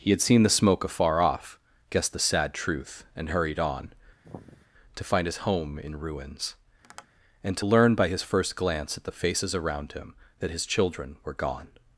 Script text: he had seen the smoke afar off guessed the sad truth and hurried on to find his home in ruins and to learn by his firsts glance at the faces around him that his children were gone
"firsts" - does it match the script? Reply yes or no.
no